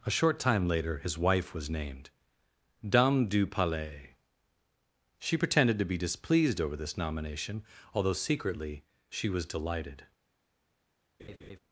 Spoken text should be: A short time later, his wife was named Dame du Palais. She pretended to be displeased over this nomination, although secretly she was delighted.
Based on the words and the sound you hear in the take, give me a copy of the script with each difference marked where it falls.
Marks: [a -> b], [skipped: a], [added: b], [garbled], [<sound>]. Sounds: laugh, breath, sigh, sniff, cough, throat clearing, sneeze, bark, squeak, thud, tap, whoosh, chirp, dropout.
A short time later, his wife was named Dame du Palais. She pretended to be displeased over this nomination, although secretly she was delighted. [laugh]